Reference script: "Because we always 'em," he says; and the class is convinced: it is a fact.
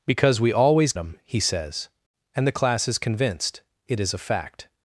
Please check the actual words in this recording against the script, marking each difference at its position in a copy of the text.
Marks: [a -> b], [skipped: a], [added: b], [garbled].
"Because we always 'em," he says; and the class is convinced: it is a fact.